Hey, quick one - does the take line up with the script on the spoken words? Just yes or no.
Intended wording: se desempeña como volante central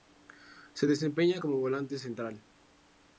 yes